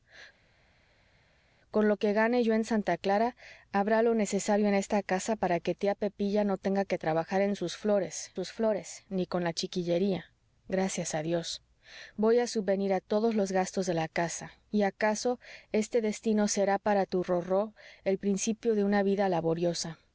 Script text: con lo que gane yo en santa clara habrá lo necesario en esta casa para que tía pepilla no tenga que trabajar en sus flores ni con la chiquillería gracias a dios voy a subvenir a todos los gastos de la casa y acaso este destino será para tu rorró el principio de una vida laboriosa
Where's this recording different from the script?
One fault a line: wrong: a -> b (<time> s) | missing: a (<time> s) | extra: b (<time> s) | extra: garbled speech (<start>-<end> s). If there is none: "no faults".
extra: sus flores (8.3 s)